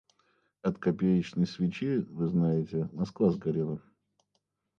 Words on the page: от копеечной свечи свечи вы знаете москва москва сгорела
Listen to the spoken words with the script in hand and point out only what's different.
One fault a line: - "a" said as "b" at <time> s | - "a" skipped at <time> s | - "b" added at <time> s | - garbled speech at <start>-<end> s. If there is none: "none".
- "свечи" skipped at 2.0 s
- "москва" skipped at 3.3 s